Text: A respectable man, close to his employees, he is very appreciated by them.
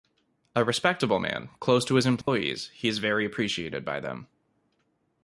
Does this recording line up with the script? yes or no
yes